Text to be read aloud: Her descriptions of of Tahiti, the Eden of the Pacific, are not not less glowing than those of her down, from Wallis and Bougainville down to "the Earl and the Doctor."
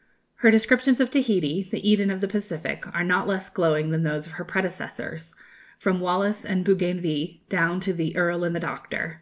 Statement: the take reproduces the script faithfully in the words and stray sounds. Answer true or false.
false